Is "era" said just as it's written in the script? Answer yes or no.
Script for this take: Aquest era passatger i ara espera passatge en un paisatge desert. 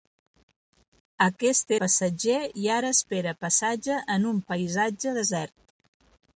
no